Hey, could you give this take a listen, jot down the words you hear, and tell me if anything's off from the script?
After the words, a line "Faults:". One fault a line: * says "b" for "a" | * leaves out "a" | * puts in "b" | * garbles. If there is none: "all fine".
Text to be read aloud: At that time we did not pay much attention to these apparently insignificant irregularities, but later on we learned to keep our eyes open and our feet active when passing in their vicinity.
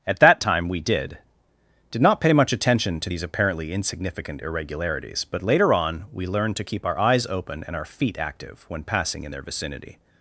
At that time we did did not pay much attention to these apparently insignificant irregularities, but later on we learned to keep our eyes open and our feet active when passing in their vicinity.
Faults:
* puts in "did"